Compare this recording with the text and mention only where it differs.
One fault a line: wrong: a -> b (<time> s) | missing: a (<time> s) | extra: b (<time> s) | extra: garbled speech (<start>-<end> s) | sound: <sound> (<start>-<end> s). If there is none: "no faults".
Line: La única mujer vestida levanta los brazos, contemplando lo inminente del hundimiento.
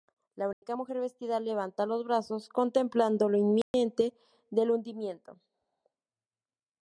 sound: dropout (0.5-0.6 s)
sound: dropout (3.6-3.7 s)